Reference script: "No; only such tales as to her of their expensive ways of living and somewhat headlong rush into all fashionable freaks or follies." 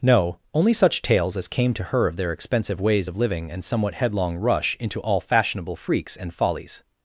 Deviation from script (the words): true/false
true